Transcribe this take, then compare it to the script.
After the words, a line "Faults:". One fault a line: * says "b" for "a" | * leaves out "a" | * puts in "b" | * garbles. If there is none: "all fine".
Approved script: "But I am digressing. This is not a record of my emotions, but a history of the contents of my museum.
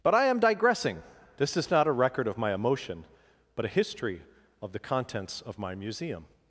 "But I am digressing. This is not a record of my emotion, but a history of the contents of my museum.
Faults:
* says "emotion" for "emotions"